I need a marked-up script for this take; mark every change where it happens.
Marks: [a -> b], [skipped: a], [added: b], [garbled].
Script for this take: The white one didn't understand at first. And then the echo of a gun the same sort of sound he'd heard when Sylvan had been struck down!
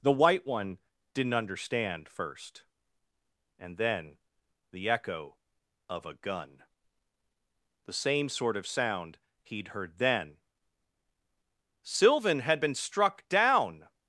The white one didn't understand [skipped: at] first. And then the echo of a gun the same sort of sound he'd heard [when -> then] Sylvan had been struck down!